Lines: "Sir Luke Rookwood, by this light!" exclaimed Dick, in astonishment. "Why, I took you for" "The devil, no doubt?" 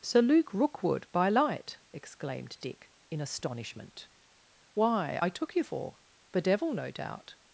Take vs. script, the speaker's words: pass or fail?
fail